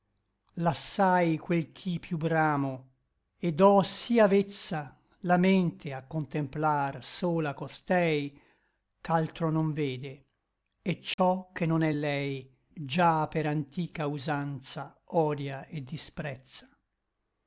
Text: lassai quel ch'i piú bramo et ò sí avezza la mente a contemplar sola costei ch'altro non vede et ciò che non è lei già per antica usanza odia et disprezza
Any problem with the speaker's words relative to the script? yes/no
no